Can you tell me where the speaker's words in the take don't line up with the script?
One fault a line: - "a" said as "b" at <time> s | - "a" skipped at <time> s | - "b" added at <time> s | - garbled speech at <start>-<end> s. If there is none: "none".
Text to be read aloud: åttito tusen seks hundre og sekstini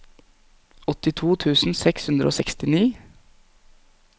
none